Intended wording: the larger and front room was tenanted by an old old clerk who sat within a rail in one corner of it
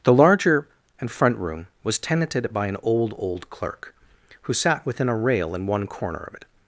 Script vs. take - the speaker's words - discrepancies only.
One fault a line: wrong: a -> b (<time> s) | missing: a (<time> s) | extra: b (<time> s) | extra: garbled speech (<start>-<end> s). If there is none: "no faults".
no faults